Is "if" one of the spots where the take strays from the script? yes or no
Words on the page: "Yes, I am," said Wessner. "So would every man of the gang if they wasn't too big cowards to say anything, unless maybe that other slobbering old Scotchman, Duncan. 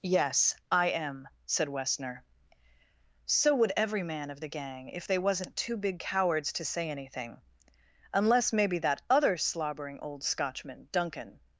no